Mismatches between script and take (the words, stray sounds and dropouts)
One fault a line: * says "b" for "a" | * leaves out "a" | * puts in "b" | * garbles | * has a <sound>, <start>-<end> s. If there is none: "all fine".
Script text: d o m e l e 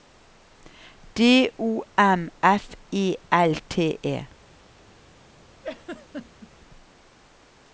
* puts in "f"
* puts in "t"
* has a laugh, 5.6-6.5 s